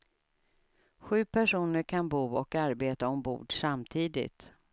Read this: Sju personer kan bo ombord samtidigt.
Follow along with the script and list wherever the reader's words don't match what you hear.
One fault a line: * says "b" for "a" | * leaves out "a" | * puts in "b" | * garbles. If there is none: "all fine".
* puts in "och arbeta"